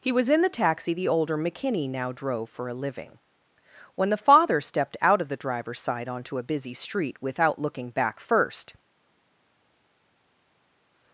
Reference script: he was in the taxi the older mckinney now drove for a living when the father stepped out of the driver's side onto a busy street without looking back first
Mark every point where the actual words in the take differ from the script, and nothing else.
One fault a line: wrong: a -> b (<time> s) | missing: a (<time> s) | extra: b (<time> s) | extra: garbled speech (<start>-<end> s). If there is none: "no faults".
no faults